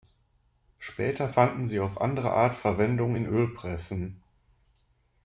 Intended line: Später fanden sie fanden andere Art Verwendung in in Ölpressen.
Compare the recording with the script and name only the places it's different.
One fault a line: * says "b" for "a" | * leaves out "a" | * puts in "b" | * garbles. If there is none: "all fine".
* says "auf" for "fanden"
* leaves out "in"